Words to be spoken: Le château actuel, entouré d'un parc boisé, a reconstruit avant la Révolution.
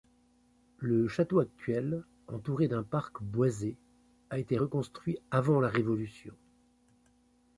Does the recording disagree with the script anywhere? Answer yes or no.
yes